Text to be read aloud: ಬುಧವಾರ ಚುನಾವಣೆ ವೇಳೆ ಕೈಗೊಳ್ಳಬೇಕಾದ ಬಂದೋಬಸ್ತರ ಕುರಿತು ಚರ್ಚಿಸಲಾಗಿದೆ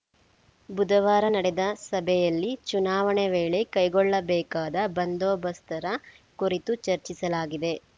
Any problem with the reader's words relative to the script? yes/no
yes